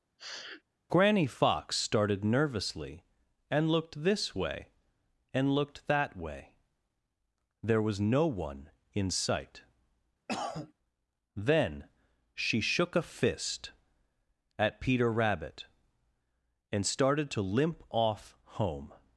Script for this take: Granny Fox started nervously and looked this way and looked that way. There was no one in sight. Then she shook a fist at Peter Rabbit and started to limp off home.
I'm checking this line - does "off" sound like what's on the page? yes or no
yes